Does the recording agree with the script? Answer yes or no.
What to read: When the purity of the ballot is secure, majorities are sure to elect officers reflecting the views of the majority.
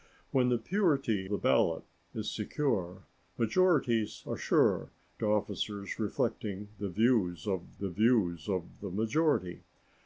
no